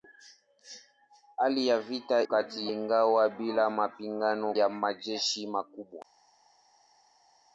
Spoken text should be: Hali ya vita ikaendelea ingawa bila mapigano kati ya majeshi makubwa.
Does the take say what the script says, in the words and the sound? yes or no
no